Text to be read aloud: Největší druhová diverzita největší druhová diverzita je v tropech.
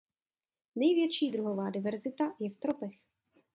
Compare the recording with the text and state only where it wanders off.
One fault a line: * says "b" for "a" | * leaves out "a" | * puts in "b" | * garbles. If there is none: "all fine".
* leaves out "největší druhová diverzita"